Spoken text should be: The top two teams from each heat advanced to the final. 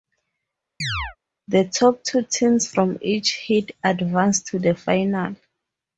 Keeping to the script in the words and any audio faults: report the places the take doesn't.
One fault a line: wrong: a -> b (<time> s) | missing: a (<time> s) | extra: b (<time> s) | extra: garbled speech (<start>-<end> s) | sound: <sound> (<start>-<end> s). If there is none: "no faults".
sound: chirp (0.8-1.2 s)